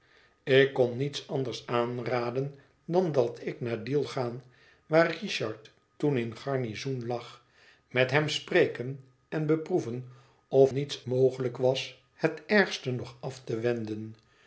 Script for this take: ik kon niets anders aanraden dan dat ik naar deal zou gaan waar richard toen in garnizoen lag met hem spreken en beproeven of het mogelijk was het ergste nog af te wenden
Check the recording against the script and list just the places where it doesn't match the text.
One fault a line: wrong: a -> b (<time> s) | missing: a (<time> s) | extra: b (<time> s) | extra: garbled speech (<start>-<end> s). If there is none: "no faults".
missing: zou (4.0 s)
wrong: het -> niets (10.7 s)